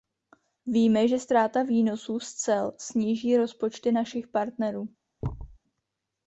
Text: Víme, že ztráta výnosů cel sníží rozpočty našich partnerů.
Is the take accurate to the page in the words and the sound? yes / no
no